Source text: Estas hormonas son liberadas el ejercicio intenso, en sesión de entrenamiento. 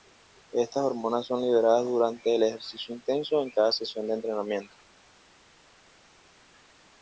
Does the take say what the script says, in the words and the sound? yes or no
no